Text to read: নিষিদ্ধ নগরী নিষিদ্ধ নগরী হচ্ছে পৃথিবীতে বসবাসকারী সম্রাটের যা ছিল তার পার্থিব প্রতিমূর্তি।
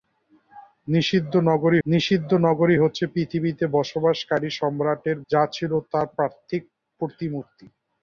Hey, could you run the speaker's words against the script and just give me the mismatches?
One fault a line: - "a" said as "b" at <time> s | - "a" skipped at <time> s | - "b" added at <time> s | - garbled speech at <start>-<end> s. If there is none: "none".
none